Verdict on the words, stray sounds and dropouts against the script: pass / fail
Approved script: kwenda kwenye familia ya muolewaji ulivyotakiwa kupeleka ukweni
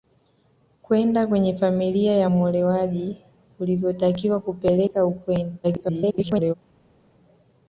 fail